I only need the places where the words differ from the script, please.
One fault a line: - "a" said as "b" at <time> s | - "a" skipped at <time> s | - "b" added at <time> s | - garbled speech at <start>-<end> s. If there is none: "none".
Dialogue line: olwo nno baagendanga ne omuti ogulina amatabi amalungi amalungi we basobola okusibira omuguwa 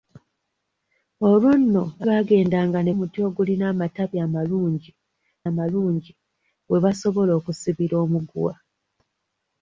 none